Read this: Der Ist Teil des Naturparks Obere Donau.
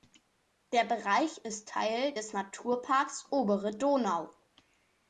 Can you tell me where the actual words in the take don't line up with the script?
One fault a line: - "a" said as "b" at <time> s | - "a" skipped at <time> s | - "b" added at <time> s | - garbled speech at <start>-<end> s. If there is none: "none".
- "Bereich" added at 0.8 s